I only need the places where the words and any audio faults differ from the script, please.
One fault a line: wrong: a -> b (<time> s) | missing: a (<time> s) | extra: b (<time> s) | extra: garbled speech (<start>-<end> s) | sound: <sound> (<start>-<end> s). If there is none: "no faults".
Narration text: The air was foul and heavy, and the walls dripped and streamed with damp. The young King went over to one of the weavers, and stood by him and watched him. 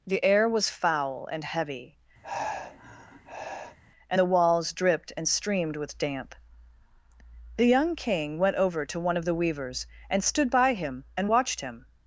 sound: sigh (2.2-3.8 s)